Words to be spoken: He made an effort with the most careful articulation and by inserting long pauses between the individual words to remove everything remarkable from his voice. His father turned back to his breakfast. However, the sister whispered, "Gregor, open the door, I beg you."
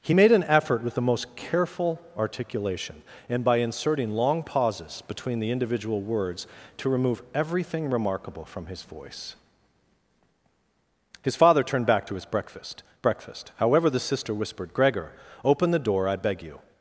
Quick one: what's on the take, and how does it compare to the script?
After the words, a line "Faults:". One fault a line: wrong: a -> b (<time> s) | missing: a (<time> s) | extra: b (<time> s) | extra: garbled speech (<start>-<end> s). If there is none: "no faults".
He made an effort with the most careful articulation and by inserting long pauses between the individual words to remove everything remarkable from his voice. His father turned back to his breakfast breakfast. However, the sister whispered, "Gregor, open the door, I beg you."
Faults:
extra: breakfast (13.0 s)